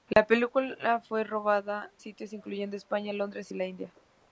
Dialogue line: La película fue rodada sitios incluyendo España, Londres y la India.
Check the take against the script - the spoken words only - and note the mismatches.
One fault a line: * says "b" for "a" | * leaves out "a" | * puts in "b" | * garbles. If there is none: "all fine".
all fine